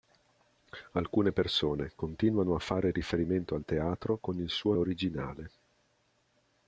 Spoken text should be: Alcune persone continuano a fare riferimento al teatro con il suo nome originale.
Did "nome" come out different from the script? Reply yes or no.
yes